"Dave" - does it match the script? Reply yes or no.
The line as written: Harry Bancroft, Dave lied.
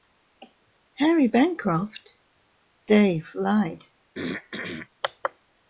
yes